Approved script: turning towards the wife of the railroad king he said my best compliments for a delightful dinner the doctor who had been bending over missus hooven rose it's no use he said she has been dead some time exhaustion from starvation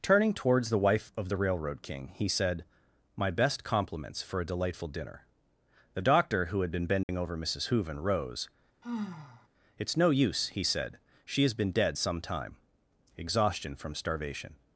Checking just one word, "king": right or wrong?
right